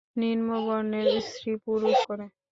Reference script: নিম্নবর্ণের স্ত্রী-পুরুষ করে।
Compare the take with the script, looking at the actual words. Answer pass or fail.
pass